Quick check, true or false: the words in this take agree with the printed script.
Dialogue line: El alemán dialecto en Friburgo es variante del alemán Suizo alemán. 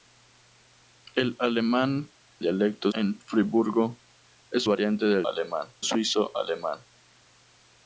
true